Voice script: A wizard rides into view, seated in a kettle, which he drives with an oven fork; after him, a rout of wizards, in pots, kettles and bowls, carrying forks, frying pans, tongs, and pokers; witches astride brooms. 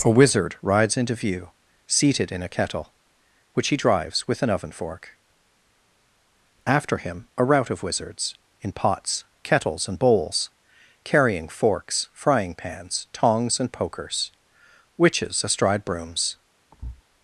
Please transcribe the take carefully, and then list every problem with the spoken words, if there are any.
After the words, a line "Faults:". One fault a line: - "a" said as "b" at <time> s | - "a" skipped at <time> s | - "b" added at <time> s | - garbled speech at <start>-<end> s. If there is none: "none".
A wizard rides into view, seated in a kettle, which he drives with an oven fork; after him, a rout of wizards, in pots, kettles and bowls, carrying forks, frying pans, tongs, and pokers; witches astride brooms.
Faults:
none